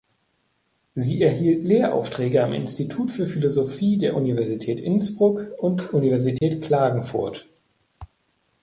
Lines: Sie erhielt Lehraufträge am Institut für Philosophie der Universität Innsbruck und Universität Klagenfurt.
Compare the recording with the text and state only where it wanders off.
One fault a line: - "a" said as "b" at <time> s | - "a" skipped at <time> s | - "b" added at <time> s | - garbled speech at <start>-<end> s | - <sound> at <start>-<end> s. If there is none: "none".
- dropout at 6.4-6.4 s